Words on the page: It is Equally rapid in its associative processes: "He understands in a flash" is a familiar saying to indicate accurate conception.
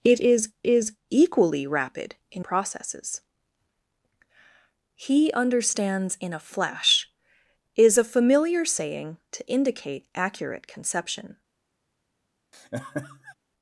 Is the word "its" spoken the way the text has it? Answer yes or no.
no